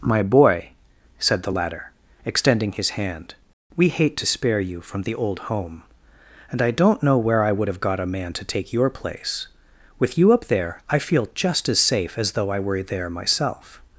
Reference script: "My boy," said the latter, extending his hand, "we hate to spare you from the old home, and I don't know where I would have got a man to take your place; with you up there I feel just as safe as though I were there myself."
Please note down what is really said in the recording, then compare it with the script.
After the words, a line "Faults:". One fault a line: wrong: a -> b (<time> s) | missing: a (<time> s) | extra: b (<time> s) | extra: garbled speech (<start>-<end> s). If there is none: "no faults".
"My boy," said the latter, extending his hand, "we hate to spare you from the old home, and I don't know where I would have got a man to take your place; with you up there I feel just as safe as though I were there myself."
Faults:
no faults